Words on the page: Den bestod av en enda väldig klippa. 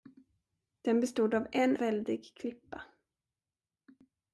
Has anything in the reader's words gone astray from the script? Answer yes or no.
yes